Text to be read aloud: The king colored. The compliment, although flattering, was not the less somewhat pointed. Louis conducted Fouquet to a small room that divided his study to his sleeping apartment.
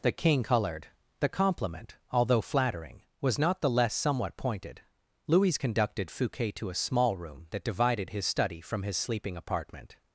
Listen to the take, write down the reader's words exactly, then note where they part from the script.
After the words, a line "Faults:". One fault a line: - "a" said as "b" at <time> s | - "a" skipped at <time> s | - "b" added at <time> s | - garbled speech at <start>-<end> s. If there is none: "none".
The king colored. The compliment, although flattering, was not the less somewhat pointed. Louis conducted Fouquet to a small room that divided his study from his sleeping apartment.
Faults:
- "to" said as "from" at 8.6 s